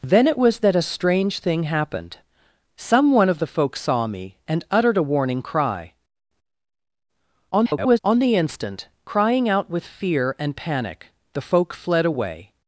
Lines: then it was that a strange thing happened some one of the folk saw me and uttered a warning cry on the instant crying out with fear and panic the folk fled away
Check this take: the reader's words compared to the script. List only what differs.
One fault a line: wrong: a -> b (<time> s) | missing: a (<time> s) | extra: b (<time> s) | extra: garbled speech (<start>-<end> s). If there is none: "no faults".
extra: garbled speech (7.5-8.0 s)